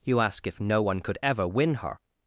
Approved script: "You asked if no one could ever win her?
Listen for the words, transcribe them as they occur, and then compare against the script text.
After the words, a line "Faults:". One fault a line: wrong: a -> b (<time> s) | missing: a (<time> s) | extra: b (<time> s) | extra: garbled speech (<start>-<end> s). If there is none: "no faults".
"You ask if no one could ever win her?
Faults:
wrong: asked -> ask (0.2 s)